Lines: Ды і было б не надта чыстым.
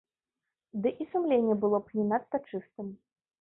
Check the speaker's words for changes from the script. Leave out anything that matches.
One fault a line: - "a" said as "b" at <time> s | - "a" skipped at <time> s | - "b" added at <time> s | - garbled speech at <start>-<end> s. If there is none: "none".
- "сумленне" added at 1.1 s